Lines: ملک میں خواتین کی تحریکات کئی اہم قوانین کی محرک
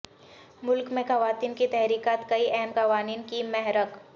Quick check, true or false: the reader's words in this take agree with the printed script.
true